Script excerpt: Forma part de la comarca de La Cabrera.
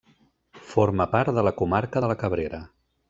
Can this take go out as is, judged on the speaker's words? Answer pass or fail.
pass